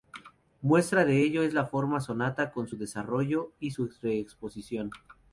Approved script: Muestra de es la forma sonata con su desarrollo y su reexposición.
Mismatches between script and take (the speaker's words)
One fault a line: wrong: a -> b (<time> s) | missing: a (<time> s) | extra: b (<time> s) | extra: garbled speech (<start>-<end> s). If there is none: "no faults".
extra: ello (1.2 s)